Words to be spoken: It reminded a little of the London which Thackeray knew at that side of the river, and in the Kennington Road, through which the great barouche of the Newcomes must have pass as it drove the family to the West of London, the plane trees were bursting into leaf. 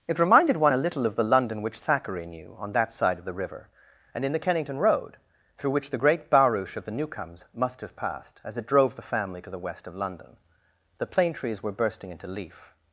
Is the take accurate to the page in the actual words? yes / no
no